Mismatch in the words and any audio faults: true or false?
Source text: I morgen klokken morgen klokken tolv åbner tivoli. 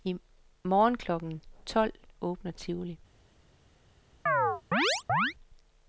true